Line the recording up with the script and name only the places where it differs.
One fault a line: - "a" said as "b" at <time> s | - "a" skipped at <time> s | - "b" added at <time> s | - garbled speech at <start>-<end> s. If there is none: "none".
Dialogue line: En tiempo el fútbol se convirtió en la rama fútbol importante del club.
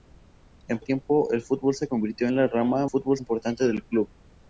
none